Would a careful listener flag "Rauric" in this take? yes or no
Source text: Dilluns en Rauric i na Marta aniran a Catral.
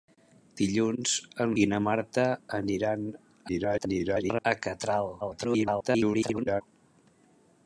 yes